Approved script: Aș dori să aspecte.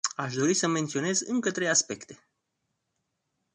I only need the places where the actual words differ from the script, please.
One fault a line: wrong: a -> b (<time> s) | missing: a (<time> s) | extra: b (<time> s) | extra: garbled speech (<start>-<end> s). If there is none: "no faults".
extra: menționez încă trei (0.7 s)